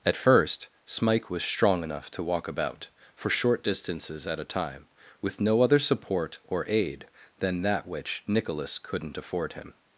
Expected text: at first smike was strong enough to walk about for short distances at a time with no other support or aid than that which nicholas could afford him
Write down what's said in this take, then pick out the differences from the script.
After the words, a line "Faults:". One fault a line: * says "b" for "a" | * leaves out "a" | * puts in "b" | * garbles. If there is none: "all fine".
at first smike was strong enough to walk about for short distances at a time with no other support or aid than that which nicholas couldn't afford him
Faults:
* says "couldn't" for "could"